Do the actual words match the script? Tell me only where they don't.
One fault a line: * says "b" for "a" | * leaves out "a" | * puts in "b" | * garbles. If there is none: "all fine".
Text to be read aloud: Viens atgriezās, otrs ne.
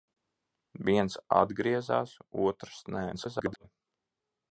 * garbles